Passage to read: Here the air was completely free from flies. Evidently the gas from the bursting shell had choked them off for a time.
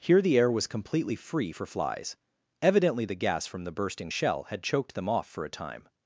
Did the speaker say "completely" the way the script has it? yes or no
yes